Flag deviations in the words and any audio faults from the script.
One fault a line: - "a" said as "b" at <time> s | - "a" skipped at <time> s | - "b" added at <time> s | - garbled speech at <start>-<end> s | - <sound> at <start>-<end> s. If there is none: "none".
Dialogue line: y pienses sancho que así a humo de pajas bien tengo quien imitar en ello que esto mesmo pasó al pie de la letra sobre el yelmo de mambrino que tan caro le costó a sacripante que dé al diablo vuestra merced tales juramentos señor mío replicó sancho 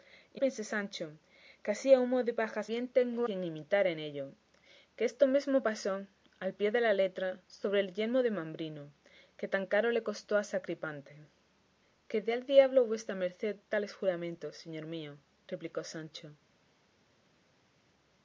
none